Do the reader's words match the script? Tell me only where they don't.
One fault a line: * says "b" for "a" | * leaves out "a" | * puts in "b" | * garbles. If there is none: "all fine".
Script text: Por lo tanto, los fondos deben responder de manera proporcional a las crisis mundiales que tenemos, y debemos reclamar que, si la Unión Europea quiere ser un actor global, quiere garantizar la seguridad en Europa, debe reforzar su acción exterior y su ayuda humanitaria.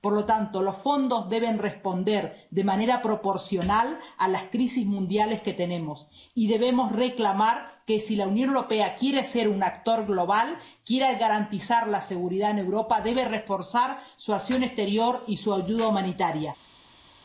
all fine